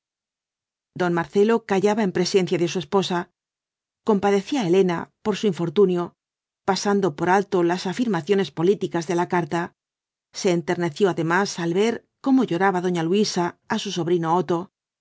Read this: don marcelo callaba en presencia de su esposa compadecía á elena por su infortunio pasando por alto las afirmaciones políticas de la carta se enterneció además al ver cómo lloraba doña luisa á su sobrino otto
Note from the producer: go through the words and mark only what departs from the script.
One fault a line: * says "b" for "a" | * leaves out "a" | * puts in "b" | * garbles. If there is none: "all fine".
all fine